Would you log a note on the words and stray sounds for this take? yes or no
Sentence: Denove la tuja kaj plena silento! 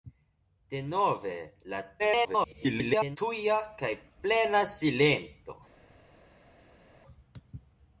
yes